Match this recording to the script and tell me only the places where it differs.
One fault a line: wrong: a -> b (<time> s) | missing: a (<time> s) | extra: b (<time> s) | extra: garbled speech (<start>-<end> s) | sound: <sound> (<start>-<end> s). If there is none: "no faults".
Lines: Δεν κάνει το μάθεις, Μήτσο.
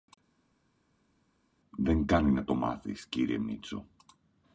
extra: να (2.3 s)
extra: κύριε (3.1 s)